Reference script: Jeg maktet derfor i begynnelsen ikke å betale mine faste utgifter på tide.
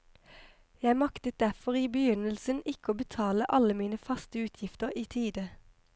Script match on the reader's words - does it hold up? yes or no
no